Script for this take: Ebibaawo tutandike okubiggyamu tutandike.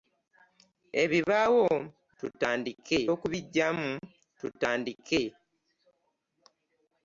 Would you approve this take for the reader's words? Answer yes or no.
yes